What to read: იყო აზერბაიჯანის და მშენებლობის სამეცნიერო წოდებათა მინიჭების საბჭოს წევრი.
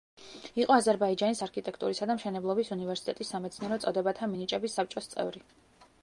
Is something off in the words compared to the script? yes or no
yes